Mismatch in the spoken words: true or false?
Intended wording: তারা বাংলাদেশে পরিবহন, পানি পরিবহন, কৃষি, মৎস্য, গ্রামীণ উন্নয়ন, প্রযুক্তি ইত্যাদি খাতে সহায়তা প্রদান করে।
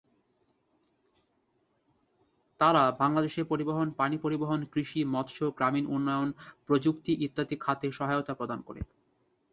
false